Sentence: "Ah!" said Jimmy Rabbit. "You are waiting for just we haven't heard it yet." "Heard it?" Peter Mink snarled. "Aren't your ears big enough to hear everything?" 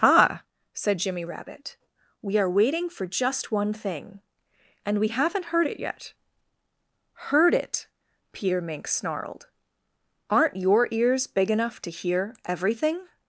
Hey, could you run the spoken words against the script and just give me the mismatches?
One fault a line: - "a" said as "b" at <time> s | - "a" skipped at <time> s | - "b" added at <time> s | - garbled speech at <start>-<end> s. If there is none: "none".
- "You" said as "We" at 2.2 s
- "one thing And" added at 3.5 s